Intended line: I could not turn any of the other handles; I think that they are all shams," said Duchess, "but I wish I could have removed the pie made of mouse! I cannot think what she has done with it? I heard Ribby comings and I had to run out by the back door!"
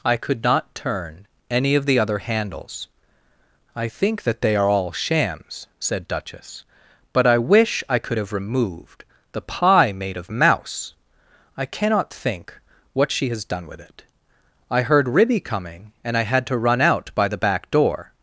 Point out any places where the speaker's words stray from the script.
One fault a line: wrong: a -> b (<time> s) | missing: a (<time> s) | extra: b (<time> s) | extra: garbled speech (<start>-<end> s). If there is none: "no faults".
wrong: comings -> coming (15.4 s)